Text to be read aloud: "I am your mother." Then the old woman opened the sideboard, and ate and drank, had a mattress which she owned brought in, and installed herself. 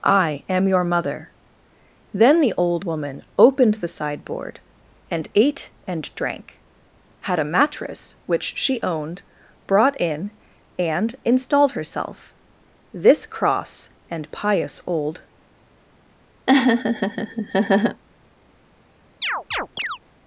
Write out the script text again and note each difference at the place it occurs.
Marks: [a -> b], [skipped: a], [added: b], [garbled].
"I am your mother." Then the old woman opened the sideboard, and ate and drank, had a mattress which she owned brought in, and installed herself. [added: This cross and pious old]